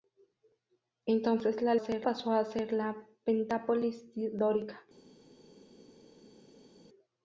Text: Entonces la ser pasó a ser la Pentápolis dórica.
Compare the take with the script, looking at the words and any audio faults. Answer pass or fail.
pass